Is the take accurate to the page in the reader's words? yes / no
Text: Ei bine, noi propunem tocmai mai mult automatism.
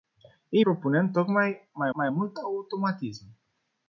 no